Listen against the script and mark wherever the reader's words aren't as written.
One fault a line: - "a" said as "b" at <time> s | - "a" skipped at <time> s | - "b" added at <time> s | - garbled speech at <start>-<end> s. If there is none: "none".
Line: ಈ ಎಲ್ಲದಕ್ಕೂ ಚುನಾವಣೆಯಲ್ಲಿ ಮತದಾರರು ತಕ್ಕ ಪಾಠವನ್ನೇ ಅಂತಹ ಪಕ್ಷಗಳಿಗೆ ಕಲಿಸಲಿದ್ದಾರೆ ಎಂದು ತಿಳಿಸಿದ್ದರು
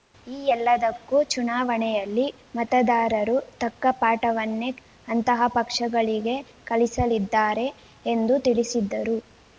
none